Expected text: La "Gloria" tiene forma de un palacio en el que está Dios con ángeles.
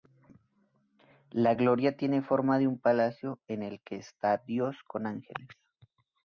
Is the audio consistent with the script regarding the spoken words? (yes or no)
yes